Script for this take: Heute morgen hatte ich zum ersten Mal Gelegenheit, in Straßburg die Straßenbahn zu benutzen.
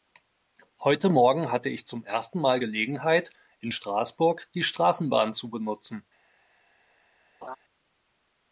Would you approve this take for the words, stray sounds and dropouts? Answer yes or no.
no